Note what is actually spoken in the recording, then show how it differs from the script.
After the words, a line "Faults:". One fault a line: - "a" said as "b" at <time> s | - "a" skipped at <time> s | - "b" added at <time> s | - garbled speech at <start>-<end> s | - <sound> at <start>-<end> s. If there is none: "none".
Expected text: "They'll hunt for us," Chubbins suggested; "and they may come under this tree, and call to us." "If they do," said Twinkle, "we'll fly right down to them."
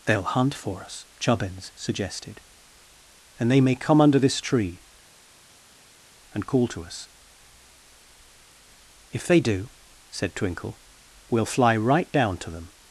"They'll hunt for us," Chubbins suggested; "and they may come under this tree, and call to us." "If they do," said Twinkle, "we'll fly right down to them."
Faults:
none